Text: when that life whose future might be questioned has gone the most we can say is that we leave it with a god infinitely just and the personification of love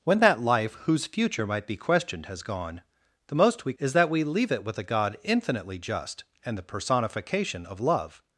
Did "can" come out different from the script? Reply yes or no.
yes